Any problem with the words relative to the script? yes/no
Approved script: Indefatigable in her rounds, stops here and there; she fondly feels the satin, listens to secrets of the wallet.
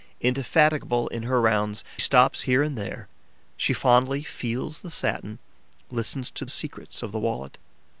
no